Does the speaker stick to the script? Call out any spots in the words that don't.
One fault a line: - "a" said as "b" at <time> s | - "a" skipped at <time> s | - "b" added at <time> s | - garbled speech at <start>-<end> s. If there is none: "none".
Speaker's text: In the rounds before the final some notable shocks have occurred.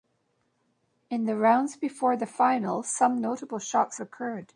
- "have" skipped at 4.0 s